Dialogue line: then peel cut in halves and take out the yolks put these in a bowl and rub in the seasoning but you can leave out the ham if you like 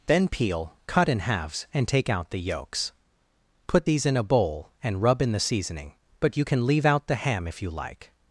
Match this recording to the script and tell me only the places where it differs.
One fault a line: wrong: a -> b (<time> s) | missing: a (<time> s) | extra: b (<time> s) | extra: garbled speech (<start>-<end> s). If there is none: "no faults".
no faults